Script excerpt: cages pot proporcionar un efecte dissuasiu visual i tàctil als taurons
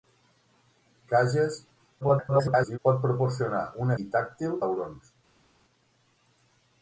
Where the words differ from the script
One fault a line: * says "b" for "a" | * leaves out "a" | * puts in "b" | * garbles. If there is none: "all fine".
* garbles
* leaves out "efecte dissuasiu visual"
* leaves out "als"